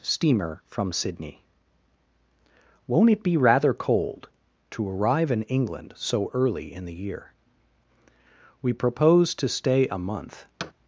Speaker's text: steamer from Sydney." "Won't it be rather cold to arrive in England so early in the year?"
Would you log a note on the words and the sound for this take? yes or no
yes